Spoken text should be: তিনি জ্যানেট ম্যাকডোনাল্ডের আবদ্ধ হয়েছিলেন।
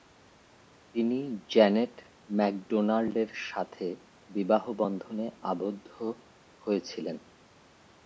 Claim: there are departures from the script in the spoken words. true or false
true